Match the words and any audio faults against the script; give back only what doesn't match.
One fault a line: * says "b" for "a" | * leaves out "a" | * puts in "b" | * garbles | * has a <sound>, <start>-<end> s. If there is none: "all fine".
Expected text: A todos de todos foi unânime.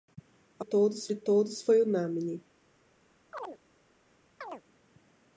* has a chirp, 3.3-3.6 s
* has a chirp, 4.4-4.6 s